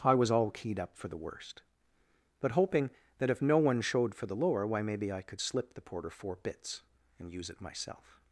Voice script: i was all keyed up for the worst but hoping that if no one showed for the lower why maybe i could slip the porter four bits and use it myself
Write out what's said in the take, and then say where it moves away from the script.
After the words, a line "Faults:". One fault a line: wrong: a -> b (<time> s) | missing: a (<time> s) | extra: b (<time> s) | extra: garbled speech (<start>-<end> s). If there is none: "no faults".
i was all keyed up for the worst but hoping that if no one showed for the lower why maybe i could slip the porter four bits and use it myself
Faults:
no faults